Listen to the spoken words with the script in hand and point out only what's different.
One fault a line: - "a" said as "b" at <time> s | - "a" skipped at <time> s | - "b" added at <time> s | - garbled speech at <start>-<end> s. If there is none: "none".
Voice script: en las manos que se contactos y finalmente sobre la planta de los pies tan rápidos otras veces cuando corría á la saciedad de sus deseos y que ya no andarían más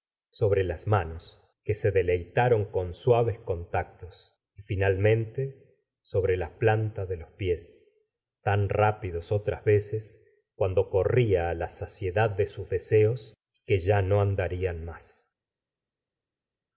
- "en" said as "sobre" at 0.3 s
- "deleitaron con suaves" added at 1.9 s